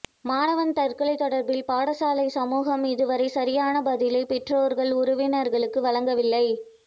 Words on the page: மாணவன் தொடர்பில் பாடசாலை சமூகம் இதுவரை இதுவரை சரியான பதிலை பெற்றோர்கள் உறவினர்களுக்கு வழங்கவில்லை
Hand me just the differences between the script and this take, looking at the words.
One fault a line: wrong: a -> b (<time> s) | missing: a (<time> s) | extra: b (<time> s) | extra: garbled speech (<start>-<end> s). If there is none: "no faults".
extra: தற்கொலை (0.7 s)
missing: இதுவரை (3.3 s)